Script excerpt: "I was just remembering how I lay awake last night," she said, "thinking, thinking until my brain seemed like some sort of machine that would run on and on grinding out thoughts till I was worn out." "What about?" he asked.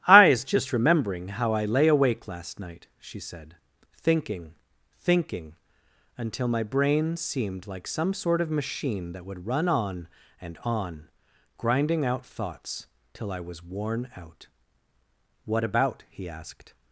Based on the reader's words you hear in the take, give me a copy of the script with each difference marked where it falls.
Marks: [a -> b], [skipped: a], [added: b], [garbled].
"I [was -> is] just remembering how I lay awake last night," she said, "thinking, thinking until my brain seemed like some sort of machine that would run on and on grinding out thoughts till I was worn out." "What about?" he asked.